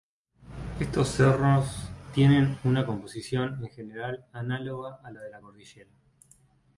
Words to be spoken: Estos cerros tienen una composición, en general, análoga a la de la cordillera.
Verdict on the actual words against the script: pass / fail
pass